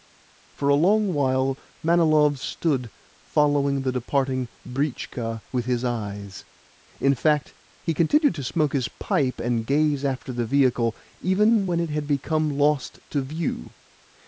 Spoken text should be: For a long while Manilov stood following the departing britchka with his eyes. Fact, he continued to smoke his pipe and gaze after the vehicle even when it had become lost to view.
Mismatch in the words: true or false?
true